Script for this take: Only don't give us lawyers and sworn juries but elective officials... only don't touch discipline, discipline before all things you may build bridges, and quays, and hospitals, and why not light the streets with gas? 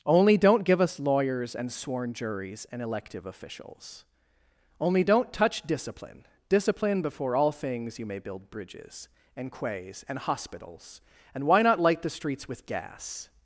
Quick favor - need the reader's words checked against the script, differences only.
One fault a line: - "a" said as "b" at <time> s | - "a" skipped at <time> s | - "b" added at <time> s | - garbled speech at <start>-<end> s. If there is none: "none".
- "but" said as "and" at 2.7 s